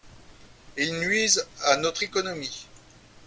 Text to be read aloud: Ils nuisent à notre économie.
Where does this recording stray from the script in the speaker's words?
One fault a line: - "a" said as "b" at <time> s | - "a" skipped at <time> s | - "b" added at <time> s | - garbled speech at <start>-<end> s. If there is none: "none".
none